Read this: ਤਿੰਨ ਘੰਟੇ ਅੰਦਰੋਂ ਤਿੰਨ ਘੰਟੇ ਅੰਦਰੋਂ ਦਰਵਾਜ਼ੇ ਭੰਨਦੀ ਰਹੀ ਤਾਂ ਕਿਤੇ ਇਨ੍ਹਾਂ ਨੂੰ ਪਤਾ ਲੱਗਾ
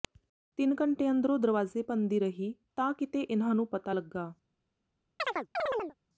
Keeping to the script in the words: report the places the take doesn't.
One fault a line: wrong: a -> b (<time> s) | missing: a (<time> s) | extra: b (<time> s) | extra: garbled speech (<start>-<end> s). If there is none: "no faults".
missing: ਤਿੰਨ ਘੰਟੇ ਅੰਦਰੋਂ (1.4 s)